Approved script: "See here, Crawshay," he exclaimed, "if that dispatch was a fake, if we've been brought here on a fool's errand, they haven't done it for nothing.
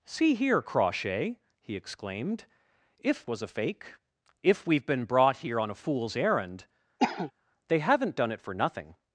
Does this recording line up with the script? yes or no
no